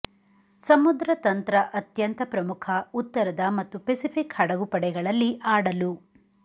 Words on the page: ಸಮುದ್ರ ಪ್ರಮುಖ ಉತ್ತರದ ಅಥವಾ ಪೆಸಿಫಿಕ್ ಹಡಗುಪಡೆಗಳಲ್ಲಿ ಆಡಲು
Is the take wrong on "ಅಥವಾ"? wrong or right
wrong